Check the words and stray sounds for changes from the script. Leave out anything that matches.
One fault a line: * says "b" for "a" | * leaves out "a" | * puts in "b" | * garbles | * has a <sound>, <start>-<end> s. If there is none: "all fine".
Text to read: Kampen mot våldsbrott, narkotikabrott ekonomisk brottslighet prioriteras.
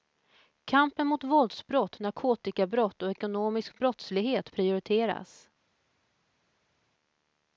* puts in "och"